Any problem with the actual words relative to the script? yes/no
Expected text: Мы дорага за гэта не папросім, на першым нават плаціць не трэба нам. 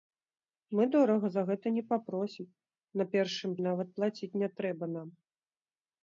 no